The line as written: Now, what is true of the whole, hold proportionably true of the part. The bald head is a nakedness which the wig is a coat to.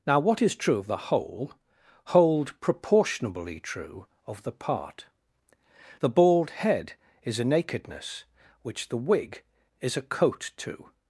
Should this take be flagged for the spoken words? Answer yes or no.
no